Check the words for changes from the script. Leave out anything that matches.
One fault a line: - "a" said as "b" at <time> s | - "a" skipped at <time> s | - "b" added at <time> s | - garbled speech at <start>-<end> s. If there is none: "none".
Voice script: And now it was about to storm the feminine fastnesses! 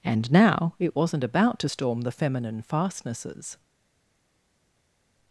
- "was" said as "wasn't" at 1.0 s